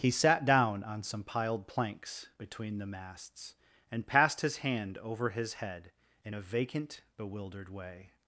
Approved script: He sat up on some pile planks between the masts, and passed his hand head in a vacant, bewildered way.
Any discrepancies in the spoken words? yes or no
yes